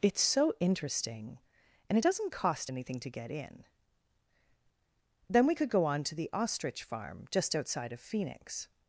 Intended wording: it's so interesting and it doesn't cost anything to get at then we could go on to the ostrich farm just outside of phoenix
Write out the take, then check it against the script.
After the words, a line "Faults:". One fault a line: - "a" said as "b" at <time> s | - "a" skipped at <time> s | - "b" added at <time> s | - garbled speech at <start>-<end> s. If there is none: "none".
it's so interesting and it doesn't cost anything to get in then we could go on to the ostrich farm just outside of phoenix
Faults:
- "at" said as "in" at 3.3 s